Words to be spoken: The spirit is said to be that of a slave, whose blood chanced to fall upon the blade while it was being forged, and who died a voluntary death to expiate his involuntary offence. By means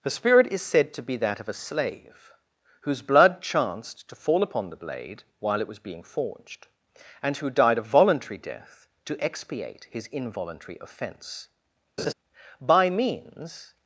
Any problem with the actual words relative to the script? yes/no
no